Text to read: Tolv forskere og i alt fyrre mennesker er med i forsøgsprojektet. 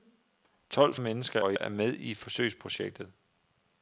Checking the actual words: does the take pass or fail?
fail